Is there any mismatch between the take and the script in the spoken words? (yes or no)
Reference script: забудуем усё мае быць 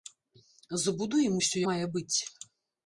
no